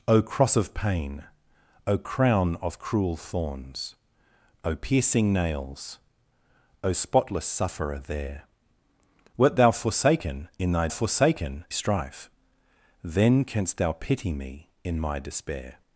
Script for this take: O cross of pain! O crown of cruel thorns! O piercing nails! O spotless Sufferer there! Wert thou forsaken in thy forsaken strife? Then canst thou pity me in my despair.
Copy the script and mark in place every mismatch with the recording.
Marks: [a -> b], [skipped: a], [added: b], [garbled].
O cross of pain! O crown of cruel thorns! O piercing nails! O spotless Sufferer there! Wert thou forsaken in thy forsaken strife? Then canst thou pity me in my despair.